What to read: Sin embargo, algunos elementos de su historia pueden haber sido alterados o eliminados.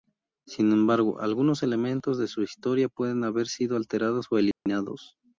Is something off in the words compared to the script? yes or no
no